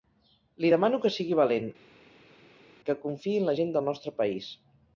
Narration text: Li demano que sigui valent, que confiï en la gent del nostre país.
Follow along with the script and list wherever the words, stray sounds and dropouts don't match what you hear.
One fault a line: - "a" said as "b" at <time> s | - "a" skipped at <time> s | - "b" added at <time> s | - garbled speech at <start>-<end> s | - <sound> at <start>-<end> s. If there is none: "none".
none